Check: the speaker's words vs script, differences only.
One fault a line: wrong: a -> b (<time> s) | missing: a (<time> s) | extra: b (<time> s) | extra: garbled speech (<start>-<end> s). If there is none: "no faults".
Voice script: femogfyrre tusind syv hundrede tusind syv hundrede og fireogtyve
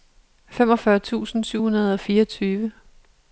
missing: tusind syv hundrede (1.9 s)